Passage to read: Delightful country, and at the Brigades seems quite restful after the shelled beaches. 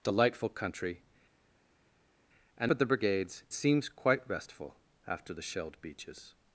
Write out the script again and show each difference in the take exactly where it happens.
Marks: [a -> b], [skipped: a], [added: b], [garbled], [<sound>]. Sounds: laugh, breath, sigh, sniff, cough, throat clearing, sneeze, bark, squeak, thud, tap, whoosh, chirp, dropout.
Delightful country, and at the Brigades seems quite restful after the shelled beaches.